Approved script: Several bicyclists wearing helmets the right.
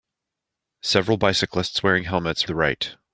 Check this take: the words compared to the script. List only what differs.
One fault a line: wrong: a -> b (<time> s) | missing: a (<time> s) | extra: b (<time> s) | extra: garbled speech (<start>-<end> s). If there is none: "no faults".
no faults